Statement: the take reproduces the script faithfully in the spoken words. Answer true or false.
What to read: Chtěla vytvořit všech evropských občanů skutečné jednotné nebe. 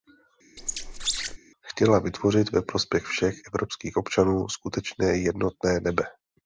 false